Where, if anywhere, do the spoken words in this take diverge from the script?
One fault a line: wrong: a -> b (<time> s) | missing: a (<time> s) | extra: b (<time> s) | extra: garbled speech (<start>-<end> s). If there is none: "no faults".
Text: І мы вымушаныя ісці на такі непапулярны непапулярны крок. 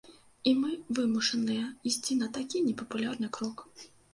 missing: непапулярны (3.3 s)